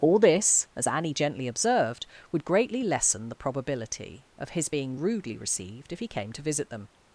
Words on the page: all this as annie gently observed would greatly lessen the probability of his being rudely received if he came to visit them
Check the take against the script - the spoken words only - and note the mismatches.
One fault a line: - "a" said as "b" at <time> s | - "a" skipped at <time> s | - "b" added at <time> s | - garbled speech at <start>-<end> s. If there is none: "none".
none